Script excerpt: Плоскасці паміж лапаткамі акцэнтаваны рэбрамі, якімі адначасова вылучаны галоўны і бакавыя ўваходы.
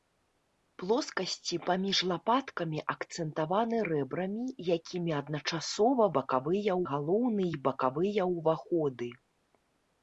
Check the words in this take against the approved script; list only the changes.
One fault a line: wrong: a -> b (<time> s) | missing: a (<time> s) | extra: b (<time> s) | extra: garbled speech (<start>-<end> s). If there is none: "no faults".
wrong: вылучаны -> бакавыя (6.2 s)